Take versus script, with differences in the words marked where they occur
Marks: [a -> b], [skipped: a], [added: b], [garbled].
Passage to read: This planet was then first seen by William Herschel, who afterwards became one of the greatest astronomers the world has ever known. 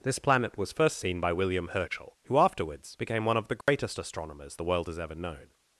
This planet was [skipped: then] first seen by William Herschel, who afterwards became one of the greatest astronomers the world has ever known.